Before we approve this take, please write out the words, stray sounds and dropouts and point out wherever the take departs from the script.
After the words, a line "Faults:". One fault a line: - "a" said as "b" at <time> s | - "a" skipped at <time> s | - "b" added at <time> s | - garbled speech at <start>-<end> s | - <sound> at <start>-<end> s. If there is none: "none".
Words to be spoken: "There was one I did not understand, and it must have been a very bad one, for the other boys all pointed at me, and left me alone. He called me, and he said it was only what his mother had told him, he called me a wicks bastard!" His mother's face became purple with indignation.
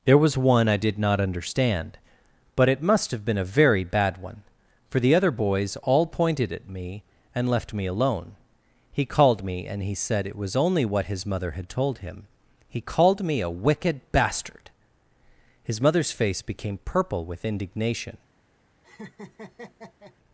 "There was one I did not understand, but it must have been a very bad one, for the other boys all pointed at me, and left me alone. He called me, and he said it was only what his mother had told him, he called me a wicked bastard!" His mother's face became purple with indignation.
Faults:
- "and" said as "but" at 2.5 s
- "wicks" said as "wicked" at 13.5 s
- laugh at 18.8-20.2 s